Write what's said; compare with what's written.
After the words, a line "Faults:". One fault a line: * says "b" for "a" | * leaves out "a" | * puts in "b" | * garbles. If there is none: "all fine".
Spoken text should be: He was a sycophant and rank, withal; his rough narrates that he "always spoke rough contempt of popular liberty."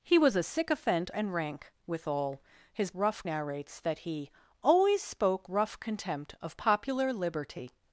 He was a sycophant and rank, withal; his rough narrates that he "always spoke rough contempt of popular liberty."
Faults:
all fine